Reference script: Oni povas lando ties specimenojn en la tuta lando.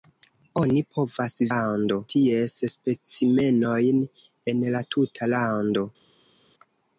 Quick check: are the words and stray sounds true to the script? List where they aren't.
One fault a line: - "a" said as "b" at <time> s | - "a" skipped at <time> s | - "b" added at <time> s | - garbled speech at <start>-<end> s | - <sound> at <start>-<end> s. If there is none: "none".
none